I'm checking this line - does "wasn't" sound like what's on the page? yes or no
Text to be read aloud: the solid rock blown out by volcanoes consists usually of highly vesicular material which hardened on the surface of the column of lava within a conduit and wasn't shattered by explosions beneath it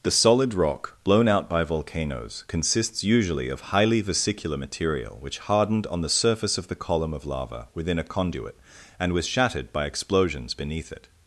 no